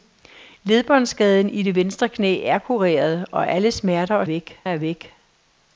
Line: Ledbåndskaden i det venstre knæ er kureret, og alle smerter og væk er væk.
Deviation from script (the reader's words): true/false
false